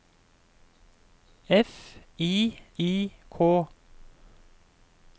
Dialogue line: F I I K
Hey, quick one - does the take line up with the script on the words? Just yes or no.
yes